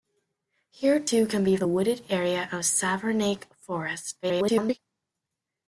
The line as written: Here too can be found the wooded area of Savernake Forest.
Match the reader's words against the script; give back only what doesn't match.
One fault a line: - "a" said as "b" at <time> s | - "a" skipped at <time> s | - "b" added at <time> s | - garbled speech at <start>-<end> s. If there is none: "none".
- "found" skipped at 1.6 s
- garbled speech at 4.2-4.8 s